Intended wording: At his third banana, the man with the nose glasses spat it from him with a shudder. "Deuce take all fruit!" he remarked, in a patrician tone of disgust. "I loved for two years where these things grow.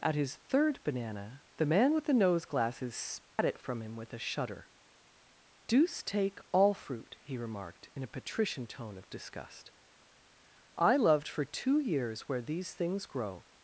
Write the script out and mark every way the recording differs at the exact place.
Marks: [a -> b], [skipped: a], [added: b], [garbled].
At his third banana, the man with the nose glasses spat it from him with a shudder. "Deuce take all fruit!" he remarked, in a patrician tone of disgust. "I loved for two years where these things grow.